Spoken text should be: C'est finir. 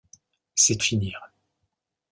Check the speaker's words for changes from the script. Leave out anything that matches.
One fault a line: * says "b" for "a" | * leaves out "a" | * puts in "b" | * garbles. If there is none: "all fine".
all fine